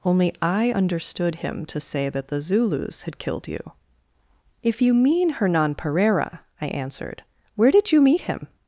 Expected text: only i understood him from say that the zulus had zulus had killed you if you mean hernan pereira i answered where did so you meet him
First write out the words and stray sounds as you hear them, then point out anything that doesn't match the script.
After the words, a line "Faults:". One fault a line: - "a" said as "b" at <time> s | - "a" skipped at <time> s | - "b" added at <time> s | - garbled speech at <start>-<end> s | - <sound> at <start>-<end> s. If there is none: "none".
only i understood him to say that the zulus had killed you if you mean hernan pereira i answered where did you meet him
Faults:
- "from" said as "to" at 1.7 s
- "zulus had" skipped at 3.2 s
- "so" skipped at 7.9 s